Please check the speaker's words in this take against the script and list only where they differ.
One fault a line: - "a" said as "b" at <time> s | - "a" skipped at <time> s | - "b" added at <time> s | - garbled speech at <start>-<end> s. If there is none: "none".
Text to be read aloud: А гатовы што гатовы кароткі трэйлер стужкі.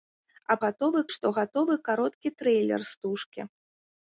none